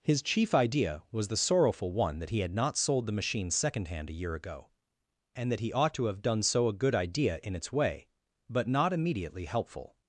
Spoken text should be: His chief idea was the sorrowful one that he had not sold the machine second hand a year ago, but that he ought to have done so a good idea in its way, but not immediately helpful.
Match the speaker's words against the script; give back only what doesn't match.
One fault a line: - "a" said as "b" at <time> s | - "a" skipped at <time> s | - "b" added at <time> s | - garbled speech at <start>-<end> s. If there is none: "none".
- "but" said as "and" at 5.4 s